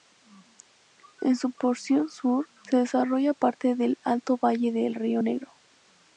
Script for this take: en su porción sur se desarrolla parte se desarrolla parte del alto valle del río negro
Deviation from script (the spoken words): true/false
true